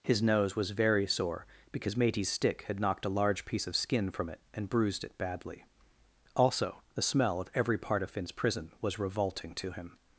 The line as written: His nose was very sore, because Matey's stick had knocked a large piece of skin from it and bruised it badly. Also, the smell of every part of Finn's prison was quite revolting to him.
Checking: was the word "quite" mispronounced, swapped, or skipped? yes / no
yes